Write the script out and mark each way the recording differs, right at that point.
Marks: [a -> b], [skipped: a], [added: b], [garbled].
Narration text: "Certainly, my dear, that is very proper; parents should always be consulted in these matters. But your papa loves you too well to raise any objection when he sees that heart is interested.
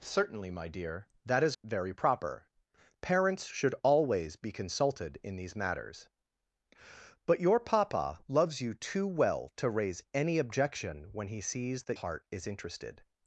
"Certainly, my dear, that is very proper; parents should always be consulted in these matters. But your papa loves you too well to raise any objection when he sees that heart is interested.